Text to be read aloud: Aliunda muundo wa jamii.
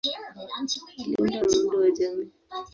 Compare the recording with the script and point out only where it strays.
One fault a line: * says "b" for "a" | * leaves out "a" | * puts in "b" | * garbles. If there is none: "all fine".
all fine